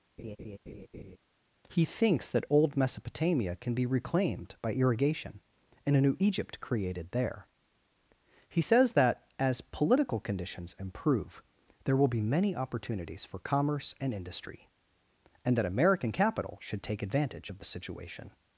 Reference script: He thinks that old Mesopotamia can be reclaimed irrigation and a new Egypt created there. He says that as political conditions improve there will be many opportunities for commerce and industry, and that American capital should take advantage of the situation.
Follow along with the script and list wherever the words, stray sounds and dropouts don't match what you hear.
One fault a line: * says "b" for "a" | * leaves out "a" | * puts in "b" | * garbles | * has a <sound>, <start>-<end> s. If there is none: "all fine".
* has a laugh, 0.2-1.2 s
* puts in "by"